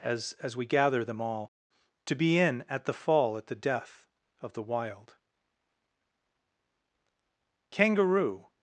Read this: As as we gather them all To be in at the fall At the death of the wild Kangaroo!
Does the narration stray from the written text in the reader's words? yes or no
no